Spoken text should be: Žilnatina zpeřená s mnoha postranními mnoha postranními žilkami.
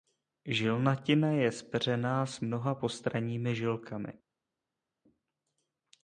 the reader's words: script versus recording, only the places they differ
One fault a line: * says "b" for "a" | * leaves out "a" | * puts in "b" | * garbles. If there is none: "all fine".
* puts in "je"
* leaves out "mnoha postranními"